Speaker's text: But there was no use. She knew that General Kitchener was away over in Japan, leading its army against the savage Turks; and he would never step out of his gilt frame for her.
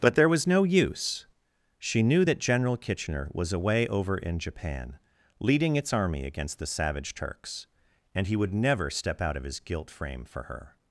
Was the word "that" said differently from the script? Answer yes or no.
no